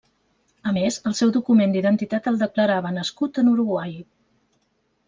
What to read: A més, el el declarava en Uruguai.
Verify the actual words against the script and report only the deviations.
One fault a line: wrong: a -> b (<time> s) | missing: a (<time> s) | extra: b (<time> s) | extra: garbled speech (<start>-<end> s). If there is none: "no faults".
extra: seu document d'identitat (1.2 s)
extra: nascut (3.0 s)